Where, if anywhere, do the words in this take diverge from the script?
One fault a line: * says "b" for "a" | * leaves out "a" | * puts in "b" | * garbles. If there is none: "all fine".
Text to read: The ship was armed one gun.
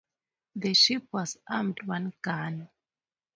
all fine